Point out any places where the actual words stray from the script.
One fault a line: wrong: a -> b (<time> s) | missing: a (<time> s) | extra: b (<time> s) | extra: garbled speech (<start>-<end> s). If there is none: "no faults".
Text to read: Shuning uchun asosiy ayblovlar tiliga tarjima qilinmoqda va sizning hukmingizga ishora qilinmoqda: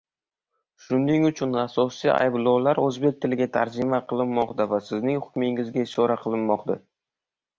extra: o'zbek (2.9 s)